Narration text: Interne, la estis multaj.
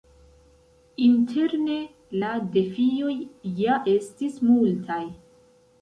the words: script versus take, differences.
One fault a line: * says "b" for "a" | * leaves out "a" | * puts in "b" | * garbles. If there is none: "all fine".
* puts in "defioj ja"